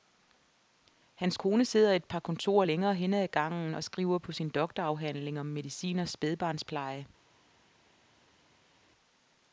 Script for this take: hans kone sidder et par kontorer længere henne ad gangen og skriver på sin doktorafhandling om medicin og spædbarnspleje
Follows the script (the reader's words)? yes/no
yes